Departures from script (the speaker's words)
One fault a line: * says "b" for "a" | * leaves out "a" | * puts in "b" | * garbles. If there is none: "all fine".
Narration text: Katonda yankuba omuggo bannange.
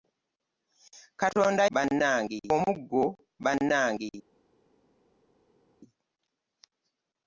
* says "bannange" for "yankuba"